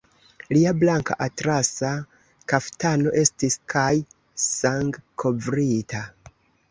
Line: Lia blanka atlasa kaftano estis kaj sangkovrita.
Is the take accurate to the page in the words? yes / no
yes